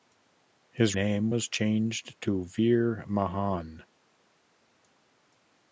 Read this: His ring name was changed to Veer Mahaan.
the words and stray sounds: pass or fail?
fail